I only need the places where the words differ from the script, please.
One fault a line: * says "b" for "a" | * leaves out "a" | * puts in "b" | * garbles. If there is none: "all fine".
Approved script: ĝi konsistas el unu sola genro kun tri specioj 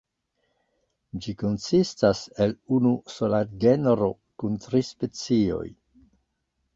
all fine